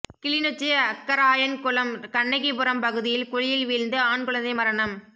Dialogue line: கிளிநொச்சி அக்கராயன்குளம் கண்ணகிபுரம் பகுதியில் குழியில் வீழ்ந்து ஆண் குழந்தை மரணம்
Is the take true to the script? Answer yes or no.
yes